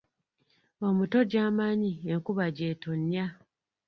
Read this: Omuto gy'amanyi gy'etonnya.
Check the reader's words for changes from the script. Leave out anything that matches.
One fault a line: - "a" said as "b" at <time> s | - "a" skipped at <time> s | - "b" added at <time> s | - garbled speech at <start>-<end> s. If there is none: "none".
- "enkuba" added at 2.1 s